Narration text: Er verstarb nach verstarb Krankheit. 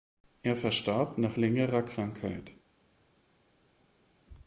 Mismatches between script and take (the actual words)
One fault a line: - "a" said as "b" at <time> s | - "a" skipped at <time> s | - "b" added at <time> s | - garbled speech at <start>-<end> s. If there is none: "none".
- "verstarb" said as "längerer" at 1.3 s